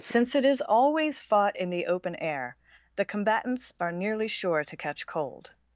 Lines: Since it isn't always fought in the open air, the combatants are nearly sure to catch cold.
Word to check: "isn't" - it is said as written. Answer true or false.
false